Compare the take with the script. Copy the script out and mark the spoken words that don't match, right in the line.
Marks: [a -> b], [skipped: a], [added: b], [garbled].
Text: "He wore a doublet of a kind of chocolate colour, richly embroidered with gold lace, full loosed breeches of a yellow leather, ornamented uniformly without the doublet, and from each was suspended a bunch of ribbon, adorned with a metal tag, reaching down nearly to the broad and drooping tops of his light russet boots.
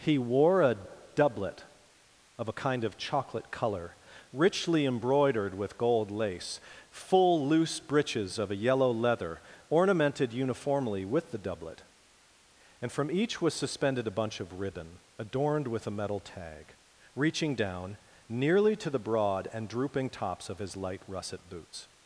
"He wore a doublet of a kind of chocolate colour, richly embroidered with gold lace, full [loosed -> loose] breeches of a yellow leather, ornamented uniformly [without -> with] the doublet, and from each was suspended a bunch of ribbon, adorned with a metal tag, reaching down nearly to the broad and drooping tops of his light russet boots.